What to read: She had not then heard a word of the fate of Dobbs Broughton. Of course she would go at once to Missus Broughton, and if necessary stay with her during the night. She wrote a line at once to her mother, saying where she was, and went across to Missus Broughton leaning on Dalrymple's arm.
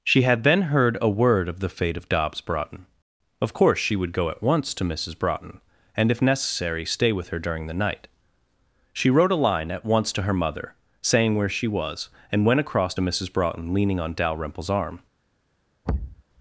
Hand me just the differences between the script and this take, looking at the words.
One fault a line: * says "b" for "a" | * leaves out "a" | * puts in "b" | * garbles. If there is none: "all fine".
* leaves out "not"